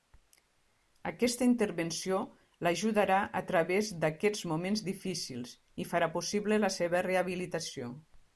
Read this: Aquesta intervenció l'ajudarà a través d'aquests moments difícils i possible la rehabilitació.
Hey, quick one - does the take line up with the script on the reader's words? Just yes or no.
no